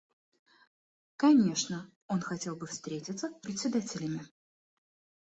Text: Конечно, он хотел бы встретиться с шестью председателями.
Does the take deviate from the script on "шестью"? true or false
true